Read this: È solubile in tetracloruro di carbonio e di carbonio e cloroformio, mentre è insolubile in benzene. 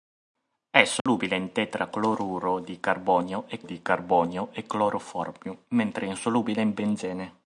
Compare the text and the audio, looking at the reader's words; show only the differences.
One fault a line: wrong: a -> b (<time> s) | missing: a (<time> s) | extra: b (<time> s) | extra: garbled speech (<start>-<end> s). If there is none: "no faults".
no faults